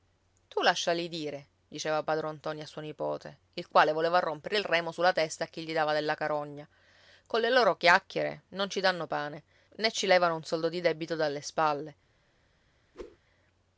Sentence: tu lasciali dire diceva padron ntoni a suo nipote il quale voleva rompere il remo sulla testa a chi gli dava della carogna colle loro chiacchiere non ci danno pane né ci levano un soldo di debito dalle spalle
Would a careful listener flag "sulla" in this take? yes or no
no